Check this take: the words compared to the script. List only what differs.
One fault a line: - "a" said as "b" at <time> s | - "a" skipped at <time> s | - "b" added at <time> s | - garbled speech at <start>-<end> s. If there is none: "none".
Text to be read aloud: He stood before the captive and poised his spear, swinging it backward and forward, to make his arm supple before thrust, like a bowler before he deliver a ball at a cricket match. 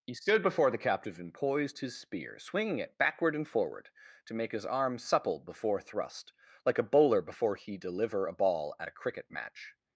none